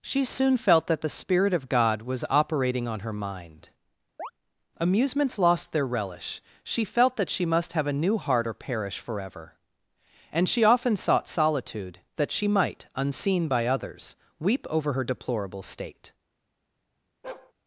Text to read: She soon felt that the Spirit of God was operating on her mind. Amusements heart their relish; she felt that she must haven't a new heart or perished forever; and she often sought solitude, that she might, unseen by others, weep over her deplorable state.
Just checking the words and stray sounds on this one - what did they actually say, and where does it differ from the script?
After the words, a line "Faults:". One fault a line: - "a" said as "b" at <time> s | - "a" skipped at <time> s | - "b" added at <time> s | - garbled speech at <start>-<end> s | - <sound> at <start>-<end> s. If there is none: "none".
She soon felt that the Spirit of God was operating on her mind. Amusements lost their relish; she felt that she must have a new heart or perish forever; and she often sought solitude, that she might, unseen by others, weep over her deplorable state.
Faults:
- chirp at 4.2-4.3 s
- "heart" said as "lost" at 5.4 s
- "haven't" said as "have" at 7.7 s
- "perished" said as "perish" at 8.5 s
- bark at 17.2-17.5 s